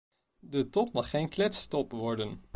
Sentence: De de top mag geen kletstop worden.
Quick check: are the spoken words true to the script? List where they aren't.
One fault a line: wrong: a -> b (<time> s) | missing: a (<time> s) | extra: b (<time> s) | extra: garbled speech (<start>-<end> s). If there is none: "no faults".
missing: de (0.7 s)